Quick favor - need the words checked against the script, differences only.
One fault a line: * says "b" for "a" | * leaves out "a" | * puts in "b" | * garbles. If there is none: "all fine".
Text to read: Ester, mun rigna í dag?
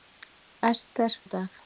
* leaves out "mun rigna"